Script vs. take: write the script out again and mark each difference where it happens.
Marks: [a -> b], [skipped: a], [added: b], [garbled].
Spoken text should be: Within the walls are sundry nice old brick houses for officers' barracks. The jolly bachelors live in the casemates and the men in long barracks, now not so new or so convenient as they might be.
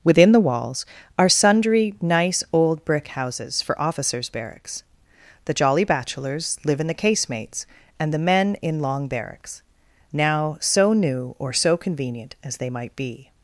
Within the walls are sundry nice old brick houses for officers' barracks. The jolly bachelors live in the casemates and the men in long barracks, now [skipped: not] so new or so convenient as they might be.